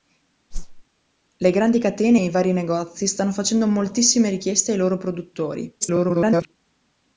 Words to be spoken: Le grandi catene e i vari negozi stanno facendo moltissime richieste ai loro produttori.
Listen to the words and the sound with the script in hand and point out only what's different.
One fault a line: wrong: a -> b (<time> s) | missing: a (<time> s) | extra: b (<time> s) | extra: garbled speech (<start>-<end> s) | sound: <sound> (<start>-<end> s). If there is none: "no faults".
sound: whoosh (0.5-0.8 s)
extra: garbled speech (5.8-6.5 s)